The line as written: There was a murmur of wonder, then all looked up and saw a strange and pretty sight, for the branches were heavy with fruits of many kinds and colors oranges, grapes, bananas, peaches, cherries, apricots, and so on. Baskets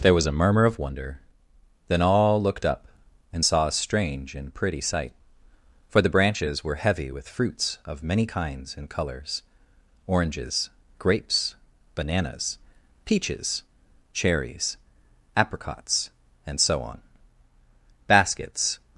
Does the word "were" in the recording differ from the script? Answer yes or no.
no